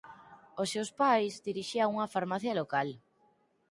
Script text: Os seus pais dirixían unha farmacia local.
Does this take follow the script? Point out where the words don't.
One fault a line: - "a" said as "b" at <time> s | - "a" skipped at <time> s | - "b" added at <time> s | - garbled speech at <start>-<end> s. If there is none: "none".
none